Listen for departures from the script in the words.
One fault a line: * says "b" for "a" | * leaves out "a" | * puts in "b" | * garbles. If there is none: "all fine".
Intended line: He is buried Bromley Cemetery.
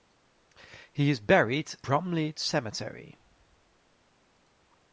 all fine